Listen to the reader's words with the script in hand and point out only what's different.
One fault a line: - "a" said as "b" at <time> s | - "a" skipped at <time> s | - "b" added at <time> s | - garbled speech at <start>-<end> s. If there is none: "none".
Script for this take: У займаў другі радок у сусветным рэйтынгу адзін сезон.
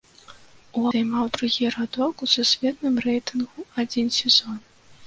none